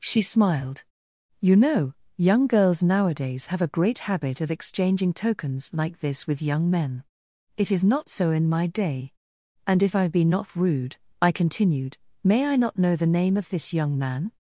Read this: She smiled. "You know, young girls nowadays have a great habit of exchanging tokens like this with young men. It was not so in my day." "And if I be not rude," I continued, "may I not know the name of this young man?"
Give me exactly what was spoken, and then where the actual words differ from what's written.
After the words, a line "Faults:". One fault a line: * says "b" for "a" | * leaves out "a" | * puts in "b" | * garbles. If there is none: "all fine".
She smiled. "You know, young girls nowadays have a great habit of exchanging tokens like this with young men. It is not so in my day." "And if I be not rude," I continued, "may I not know the name of this young man?"
Faults:
* says "is" for "was"